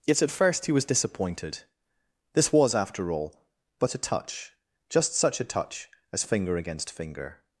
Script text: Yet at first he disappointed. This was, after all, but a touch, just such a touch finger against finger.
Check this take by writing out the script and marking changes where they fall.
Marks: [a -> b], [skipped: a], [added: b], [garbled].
Yet at first he [added: was] disappointed. This was, after all, but a touch, just such a touch [added: as] finger against finger.